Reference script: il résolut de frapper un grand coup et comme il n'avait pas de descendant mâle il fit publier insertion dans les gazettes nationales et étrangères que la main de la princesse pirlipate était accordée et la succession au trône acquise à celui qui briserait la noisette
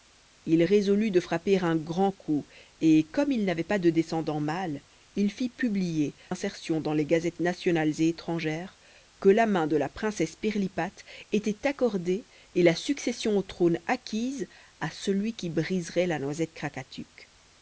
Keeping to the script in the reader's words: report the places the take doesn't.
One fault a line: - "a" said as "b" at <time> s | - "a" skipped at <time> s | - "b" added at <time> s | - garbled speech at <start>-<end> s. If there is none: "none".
none